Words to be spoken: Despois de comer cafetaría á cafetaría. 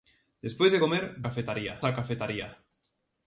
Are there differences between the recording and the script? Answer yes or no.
no